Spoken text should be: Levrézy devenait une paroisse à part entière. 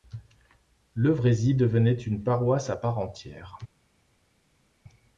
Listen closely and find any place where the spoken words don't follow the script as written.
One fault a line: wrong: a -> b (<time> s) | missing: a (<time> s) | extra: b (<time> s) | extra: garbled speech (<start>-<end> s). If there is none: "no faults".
no faults